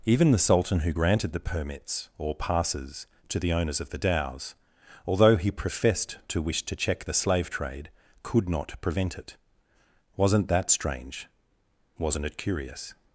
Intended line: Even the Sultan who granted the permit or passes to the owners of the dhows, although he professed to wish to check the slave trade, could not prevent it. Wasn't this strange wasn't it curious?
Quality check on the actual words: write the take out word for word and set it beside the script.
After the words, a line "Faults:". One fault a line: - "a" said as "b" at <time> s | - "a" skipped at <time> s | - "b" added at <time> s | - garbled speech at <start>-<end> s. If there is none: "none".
Even the Sultan who granted the permits or passes to the owners of the dhows, although he professed to wish to check the slave trade, could not prevent it. Wasn't that strange wasn't it curious?
Faults:
- "permit" said as "permits" at 1.4 s
- "this" said as "that" at 10.5 s